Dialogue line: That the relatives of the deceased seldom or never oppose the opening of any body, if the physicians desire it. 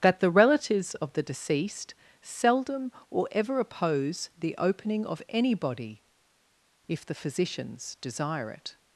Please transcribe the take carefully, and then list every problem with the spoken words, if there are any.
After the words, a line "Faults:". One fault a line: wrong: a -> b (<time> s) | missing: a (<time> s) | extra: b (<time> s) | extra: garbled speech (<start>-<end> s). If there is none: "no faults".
That the relatives of the deceased seldom or ever oppose the opening of any body, if the physicians desire it.
Faults:
wrong: never -> ever (3.3 s)